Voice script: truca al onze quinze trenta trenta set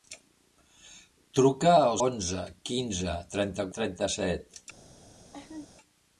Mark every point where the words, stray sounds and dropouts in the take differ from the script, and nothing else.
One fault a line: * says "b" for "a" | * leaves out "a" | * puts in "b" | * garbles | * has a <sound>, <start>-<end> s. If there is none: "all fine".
* has a laugh, 5.3-5.7 s